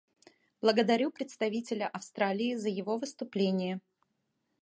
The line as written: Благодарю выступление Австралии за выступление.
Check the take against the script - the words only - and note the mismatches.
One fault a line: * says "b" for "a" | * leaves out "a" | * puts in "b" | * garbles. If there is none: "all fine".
* says "представителя" for "выступление"
* puts in "его"